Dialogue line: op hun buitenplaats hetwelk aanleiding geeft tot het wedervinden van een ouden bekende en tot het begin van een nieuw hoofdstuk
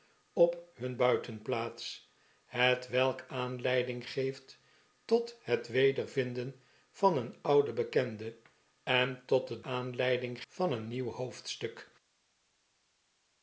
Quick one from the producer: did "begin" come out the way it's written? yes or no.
no